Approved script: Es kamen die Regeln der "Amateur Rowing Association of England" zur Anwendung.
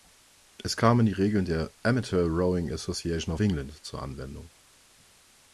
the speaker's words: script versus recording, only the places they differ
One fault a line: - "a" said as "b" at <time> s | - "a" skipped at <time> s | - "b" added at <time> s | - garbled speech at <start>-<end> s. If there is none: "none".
none